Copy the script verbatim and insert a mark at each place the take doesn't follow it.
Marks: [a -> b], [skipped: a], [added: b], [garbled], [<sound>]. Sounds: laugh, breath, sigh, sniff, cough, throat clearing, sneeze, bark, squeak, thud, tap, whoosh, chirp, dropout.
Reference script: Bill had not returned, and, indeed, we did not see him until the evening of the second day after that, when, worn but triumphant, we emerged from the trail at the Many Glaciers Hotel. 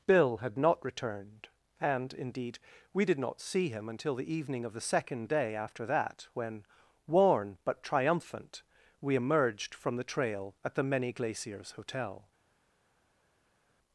Bill had not returned, and, indeed, we did not see him until the evening of the second day after that, when, worn but triumphant, we emerged from the trail at the Many Glaciers Hotel.